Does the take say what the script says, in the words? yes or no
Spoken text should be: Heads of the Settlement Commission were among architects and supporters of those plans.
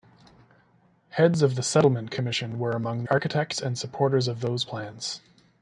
yes